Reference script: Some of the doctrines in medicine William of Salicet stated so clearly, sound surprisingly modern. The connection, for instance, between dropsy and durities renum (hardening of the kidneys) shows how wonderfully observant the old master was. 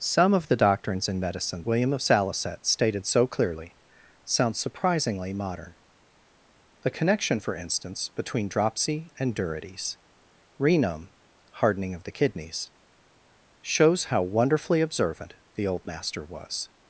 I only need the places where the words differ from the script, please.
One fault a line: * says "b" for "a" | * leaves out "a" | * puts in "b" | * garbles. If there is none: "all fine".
all fine